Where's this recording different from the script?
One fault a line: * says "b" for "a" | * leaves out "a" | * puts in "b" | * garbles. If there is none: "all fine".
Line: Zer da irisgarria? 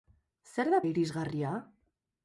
all fine